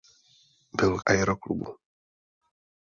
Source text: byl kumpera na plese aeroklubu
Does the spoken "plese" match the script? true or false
false